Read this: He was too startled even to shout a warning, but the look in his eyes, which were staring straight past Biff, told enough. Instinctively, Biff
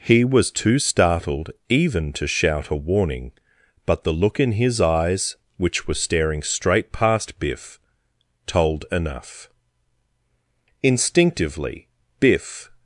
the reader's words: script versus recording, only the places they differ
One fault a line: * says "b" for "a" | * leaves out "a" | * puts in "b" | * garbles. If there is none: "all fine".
all fine